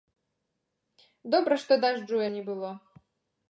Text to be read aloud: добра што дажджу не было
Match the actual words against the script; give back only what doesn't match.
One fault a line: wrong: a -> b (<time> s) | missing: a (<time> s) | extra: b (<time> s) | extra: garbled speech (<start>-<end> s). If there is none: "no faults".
no faults